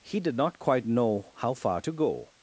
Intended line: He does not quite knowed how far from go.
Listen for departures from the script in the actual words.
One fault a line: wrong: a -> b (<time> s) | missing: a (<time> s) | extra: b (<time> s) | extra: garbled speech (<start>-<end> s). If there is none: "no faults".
wrong: does -> did (0.2 s)
wrong: knowed -> know (0.8 s)
wrong: from -> to (1.8 s)